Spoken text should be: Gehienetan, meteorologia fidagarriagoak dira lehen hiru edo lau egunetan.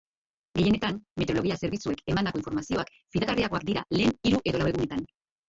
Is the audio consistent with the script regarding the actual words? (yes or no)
no